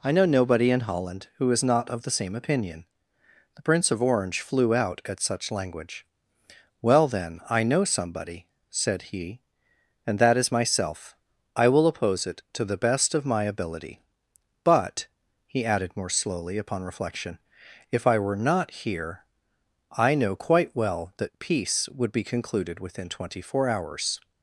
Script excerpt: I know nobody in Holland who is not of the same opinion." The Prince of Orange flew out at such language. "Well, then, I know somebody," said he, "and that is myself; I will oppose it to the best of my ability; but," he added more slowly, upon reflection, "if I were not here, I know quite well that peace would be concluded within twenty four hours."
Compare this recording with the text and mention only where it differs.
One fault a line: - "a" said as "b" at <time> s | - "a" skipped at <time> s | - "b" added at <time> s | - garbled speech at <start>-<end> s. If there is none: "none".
none